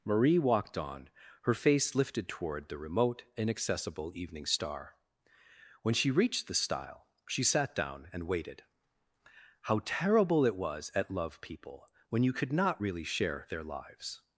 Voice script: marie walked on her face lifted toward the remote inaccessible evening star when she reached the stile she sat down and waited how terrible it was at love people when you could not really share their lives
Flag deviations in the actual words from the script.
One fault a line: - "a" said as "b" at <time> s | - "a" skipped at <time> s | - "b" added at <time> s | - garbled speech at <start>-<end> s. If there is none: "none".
none